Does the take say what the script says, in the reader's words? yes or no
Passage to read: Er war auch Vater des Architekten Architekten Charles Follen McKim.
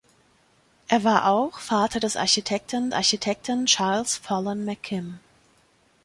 yes